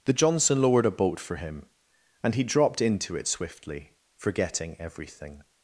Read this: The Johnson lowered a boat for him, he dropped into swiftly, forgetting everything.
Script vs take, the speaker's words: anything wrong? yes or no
yes